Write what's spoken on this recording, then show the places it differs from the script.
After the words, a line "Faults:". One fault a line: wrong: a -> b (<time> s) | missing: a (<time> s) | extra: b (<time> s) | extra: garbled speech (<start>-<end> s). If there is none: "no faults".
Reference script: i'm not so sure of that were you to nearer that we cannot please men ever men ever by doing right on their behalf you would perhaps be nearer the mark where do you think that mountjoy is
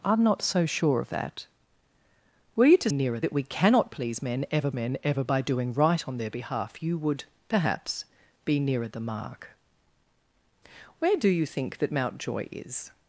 i'm not so sure of that were you to nearer that we cannot please men ever men ever by doing right on their behalf you would perhaps be nearer the mark where do you think that mountjoy is
Faults:
no faults